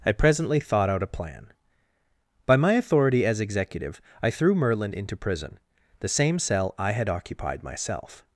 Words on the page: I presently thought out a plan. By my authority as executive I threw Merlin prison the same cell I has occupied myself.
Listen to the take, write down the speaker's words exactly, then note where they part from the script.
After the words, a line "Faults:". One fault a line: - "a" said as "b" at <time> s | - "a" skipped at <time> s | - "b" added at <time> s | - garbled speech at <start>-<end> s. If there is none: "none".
I presently thought out a plan. By my authority as executive I threw Merlin into prison the same cell I had occupied myself.
Faults:
- "into" added at 4.9 s
- "has" said as "had" at 6.9 s